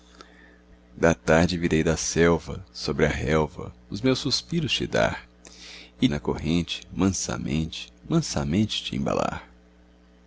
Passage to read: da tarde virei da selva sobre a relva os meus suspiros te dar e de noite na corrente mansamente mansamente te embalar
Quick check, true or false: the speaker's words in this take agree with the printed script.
false